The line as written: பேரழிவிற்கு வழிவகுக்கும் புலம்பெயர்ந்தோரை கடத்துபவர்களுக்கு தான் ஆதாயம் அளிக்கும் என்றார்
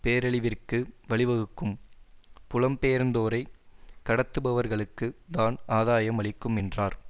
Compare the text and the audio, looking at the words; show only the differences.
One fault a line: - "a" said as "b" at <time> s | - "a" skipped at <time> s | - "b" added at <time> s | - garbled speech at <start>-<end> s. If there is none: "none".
none